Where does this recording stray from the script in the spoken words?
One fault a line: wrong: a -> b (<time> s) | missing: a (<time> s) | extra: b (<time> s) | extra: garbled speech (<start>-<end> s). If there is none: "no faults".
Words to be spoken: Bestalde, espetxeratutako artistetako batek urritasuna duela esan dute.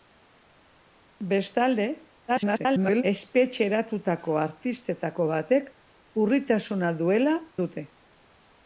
extra: garbled speech (2.3-3.0 s)
missing: esan (7.4 s)